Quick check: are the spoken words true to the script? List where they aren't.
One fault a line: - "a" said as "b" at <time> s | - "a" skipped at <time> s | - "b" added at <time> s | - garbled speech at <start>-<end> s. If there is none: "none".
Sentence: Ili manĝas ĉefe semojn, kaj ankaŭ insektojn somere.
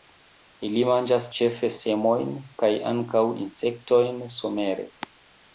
none